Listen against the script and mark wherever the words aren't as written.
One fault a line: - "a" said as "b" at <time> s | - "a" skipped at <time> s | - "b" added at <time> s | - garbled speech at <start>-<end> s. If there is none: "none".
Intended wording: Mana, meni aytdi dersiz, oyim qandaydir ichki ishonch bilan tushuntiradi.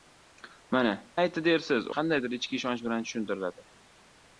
- "meni" skipped at 0.9 s
- "oyim" skipped at 1.9 s